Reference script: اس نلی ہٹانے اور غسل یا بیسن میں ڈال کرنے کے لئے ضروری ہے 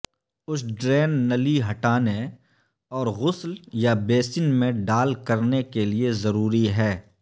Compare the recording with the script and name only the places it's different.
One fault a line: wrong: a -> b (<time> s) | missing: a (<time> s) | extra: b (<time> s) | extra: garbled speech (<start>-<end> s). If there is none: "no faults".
extra: ڈرین (0.7 s)